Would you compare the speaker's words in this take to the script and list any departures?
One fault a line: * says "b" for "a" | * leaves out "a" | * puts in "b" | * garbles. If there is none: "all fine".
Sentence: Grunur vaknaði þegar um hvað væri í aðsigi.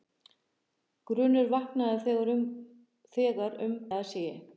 * leaves out "hvað væri"